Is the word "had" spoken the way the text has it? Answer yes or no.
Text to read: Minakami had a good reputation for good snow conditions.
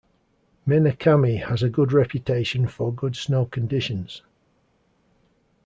no